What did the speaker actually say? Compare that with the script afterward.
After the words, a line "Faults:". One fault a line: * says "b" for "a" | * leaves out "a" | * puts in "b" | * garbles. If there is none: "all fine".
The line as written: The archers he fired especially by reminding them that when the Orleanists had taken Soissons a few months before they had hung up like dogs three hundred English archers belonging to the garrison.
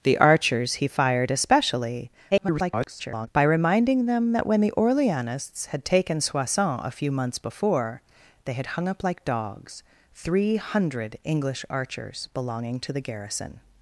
The archers he fired especially [garbled] by reminding them that when the Orleanists had taken Soissons a few months before they had hung up like dogs three hundred English archers belonging to the garrison.
Faults:
* garbles